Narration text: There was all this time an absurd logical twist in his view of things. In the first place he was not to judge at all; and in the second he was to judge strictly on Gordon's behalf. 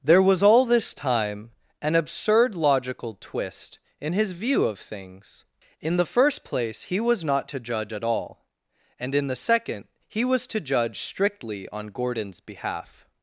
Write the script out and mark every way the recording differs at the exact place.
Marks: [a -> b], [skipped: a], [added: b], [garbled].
There was all this time an absurd logical twist in his view of things. In the first place he was not to judge at all; and in the second he was to judge strictly on Gordon's behalf.